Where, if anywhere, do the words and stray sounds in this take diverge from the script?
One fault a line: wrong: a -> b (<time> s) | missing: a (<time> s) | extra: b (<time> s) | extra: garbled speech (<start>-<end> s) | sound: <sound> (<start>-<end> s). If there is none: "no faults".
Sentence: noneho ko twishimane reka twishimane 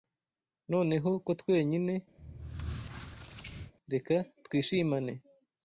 wrong: twishimane -> twenyine (1.4 s)
sound: squeak (2.2-3.7 s)